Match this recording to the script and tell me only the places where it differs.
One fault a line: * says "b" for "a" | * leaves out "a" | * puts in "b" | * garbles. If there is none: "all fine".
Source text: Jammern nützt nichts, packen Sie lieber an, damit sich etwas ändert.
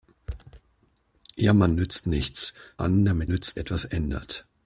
* leaves out "packen Sie lieber"
* says "nützt" for "sich"